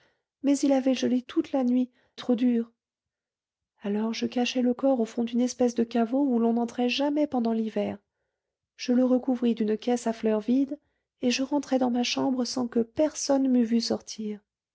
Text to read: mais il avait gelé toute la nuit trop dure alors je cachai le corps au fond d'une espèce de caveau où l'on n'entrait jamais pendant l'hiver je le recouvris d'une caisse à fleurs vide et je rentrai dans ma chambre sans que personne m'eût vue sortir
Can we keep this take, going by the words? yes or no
yes